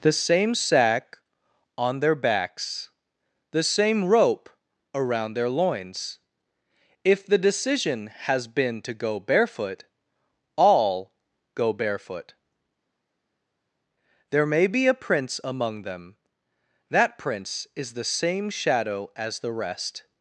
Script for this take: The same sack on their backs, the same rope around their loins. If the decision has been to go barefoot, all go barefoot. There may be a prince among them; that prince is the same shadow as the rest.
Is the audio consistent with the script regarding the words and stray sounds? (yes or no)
yes